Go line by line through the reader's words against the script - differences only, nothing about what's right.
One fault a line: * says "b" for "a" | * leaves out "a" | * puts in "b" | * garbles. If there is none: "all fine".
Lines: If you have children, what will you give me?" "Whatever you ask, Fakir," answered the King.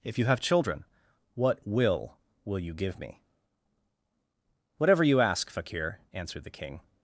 * puts in "will"